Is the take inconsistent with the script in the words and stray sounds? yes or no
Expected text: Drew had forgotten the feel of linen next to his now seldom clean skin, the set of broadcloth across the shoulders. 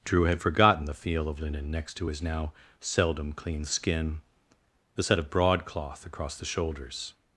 no